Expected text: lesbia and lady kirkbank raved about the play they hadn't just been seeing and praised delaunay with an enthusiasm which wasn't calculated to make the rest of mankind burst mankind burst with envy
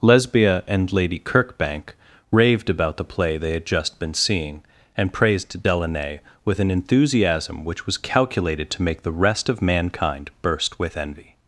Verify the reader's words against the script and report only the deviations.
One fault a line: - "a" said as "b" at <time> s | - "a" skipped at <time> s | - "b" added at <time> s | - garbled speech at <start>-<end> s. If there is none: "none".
- "hadn't" said as "had" at 3.5 s
- "wasn't" said as "was" at 7.8 s
- "mankind burst" skipped at 10.8 s